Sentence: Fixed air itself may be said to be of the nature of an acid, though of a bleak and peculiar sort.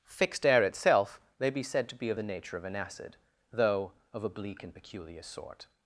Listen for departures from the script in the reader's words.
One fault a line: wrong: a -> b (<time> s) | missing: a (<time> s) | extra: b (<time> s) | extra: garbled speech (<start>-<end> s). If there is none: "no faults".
no faults